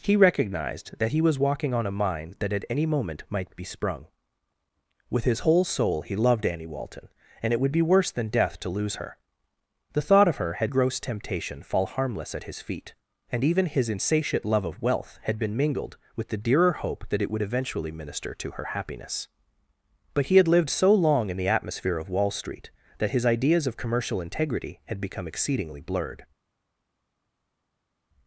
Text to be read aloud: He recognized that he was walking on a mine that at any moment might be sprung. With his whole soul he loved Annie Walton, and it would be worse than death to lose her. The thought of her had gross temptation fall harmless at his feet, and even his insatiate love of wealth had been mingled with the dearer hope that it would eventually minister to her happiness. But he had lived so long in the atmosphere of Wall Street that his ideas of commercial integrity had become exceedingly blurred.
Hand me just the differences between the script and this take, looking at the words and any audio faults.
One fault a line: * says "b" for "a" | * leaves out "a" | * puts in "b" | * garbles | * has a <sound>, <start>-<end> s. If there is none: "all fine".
all fine